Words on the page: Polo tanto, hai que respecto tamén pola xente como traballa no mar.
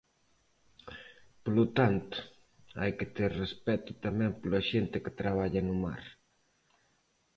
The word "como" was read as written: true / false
false